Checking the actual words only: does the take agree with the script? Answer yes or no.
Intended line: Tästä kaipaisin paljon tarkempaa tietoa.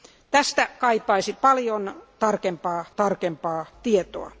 no